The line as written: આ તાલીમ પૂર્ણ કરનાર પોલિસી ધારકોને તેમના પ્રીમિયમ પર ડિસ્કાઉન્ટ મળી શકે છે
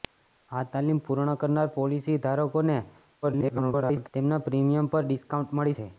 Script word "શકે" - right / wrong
wrong